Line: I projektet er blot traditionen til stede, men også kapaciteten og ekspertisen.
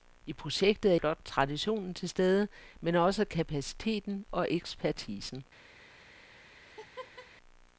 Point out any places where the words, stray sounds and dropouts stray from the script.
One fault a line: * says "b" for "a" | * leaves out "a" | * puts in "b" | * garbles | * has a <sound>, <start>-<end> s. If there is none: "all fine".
* has a laugh, 6.6-7.3 s